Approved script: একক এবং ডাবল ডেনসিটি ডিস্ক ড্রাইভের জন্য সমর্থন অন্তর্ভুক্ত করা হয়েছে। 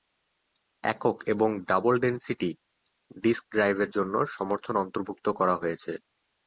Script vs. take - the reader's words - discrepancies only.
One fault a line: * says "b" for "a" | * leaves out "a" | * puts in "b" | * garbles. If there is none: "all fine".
all fine